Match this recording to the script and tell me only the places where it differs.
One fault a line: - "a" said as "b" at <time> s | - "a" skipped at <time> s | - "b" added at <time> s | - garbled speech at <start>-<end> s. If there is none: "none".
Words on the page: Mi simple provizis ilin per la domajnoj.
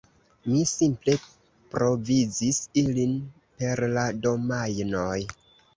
none